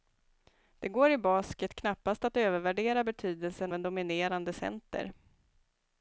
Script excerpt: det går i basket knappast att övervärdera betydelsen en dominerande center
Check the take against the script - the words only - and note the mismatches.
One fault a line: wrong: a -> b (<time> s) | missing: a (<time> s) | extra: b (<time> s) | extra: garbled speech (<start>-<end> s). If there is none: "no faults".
no faults